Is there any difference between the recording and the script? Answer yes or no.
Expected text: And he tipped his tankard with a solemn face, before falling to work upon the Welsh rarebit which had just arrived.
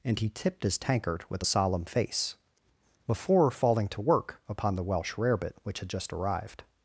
no